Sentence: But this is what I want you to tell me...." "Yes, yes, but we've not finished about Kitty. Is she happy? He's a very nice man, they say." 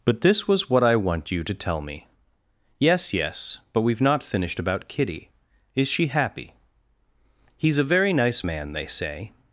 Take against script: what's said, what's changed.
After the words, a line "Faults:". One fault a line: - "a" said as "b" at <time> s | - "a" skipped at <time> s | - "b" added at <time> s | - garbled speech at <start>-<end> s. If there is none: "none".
But this was what I want you to tell me...." "Yes, yes, but we've not finished about Kitty. Is she happy? He's a very nice man, they say."
Faults:
- "is" said as "was" at 0.5 s